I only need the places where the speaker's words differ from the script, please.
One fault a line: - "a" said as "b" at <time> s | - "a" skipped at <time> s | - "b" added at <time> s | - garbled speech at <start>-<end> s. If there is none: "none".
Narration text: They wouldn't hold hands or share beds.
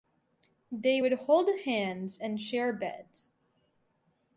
- "wouldn't" said as "would" at 1.0 s
- "or" said as "and" at 2.2 s